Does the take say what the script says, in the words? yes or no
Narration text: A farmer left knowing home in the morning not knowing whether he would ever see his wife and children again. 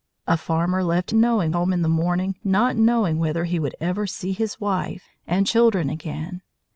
yes